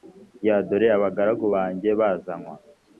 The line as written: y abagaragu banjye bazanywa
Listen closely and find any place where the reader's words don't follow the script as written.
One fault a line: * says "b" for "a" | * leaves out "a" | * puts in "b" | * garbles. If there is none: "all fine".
* puts in "dore"